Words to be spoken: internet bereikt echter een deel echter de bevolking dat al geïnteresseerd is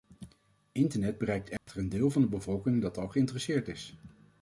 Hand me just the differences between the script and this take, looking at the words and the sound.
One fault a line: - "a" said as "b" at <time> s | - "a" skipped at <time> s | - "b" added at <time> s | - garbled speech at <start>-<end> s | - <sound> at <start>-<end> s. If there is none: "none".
- dropout at 1.6-1.7 s
- "echter" said as "van" at 2.1 s